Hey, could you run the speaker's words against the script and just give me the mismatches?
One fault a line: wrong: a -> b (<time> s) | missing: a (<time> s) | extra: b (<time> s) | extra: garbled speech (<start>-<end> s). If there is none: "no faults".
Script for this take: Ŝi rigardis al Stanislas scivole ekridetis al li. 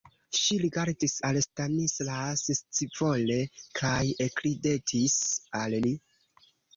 extra: kaj (3.8 s)